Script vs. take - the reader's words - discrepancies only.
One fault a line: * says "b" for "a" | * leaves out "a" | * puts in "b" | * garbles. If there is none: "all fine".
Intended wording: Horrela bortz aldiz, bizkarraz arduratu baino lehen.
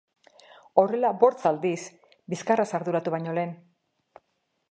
all fine